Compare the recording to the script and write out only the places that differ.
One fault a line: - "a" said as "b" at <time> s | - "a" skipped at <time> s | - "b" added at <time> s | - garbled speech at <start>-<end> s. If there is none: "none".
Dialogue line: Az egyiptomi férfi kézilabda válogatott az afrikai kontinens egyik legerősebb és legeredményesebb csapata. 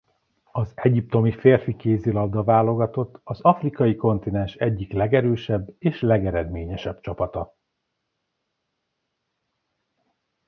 none